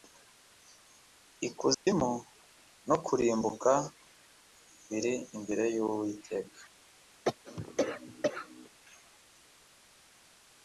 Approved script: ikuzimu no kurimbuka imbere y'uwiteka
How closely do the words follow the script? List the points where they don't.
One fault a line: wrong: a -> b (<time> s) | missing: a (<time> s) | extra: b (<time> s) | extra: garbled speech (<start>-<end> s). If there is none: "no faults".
extra: biri (4.9 s)